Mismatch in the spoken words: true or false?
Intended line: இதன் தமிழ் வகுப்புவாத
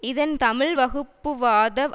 false